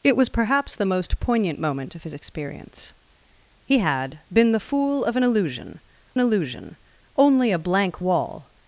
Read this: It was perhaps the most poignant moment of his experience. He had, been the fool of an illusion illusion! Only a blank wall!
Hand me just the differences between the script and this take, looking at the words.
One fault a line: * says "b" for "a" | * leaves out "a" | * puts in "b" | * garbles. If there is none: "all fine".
all fine